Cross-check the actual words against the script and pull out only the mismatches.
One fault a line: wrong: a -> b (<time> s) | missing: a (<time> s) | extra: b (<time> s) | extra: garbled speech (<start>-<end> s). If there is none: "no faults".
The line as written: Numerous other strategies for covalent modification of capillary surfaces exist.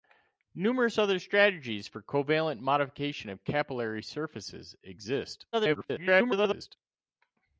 extra: garbled speech (5.5-6.8 s)